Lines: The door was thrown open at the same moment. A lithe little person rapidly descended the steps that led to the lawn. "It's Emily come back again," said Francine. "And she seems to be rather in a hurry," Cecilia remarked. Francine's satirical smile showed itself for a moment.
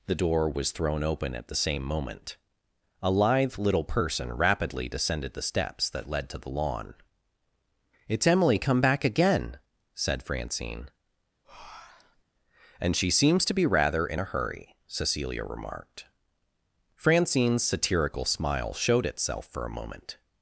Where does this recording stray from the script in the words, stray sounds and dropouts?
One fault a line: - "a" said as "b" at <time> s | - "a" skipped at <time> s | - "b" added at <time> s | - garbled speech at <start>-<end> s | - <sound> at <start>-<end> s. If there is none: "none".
- breath at 11.4-12.2 s